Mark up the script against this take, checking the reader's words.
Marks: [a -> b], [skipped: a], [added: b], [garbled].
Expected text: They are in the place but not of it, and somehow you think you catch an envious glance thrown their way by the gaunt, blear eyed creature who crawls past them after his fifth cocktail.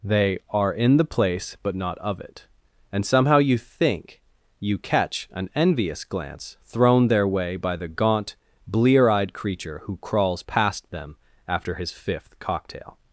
They are in the place but not of it, and somehow you think you catch an envious glance thrown their way by the gaunt, blear eyed creature who crawls past them after his fifth cocktail.